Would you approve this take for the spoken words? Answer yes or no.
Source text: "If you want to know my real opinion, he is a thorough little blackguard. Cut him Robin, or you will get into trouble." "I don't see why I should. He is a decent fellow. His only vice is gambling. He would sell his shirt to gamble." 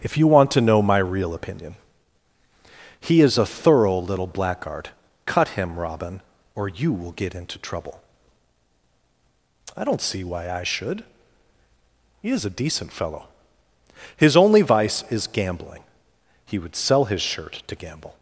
yes